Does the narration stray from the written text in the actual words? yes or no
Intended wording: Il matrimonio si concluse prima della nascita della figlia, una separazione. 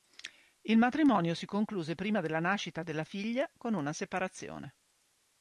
yes